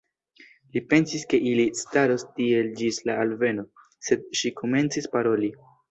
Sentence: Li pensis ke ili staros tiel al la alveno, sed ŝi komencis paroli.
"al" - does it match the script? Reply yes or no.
no